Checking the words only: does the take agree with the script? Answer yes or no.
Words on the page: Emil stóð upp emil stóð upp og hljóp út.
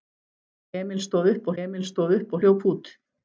yes